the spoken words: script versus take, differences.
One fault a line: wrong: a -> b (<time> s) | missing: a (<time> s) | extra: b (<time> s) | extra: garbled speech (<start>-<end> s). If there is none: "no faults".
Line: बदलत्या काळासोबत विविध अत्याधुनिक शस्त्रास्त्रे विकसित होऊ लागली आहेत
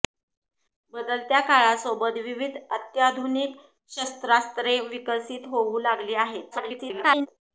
extra: garbled speech (6.5-7.3 s)